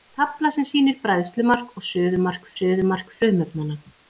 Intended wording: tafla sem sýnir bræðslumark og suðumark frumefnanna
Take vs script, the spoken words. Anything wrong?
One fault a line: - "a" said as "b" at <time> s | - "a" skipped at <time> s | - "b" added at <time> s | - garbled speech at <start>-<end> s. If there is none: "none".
- "suðumark" added at 2.6 s